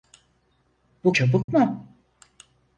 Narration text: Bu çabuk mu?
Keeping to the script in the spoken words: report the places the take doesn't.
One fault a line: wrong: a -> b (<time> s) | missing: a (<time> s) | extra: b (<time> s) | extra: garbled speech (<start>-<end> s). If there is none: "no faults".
no faults